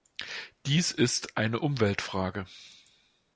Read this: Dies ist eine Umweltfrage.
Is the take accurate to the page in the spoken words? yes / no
yes